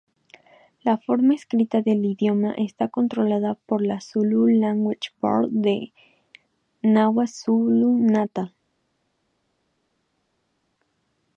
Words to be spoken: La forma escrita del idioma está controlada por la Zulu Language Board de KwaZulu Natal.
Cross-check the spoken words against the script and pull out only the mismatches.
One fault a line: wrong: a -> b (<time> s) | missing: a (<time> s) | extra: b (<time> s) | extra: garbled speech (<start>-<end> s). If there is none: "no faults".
no faults